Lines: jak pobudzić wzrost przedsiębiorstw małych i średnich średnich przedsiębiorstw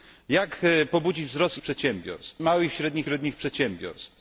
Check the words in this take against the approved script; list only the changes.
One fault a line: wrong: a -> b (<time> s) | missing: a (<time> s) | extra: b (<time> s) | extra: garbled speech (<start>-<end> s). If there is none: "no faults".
no faults